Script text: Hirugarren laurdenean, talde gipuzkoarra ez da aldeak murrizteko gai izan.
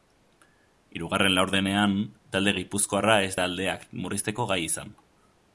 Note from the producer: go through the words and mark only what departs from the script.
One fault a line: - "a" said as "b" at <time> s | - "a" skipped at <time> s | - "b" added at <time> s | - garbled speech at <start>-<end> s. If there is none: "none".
none